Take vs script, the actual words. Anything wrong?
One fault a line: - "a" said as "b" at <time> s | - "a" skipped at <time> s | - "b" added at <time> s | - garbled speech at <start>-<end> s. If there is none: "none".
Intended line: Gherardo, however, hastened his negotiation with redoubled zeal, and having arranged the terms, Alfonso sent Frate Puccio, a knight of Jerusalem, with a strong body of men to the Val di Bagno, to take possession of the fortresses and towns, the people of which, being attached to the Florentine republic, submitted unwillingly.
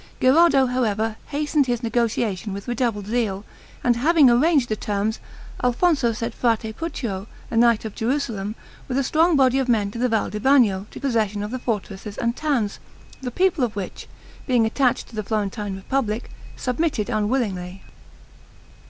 - "take" skipped at 11.0 s